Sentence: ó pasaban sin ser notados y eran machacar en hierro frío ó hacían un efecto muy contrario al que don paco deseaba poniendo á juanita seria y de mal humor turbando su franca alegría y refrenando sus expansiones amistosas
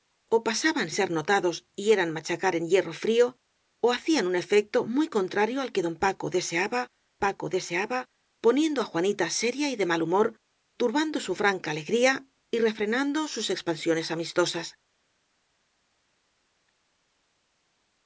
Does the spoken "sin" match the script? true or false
false